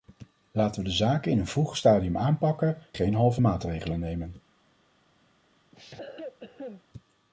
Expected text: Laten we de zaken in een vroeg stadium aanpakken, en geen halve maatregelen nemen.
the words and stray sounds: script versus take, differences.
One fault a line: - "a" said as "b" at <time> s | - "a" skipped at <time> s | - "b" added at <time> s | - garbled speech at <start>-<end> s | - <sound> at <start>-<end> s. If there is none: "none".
- "en" skipped at 2.8 s
- cough at 5.7-6.8 s